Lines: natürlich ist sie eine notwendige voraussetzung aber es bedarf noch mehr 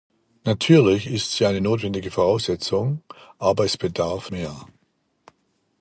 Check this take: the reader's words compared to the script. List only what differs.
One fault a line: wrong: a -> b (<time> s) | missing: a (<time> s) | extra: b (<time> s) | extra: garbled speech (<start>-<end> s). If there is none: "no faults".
missing: noch (4.3 s)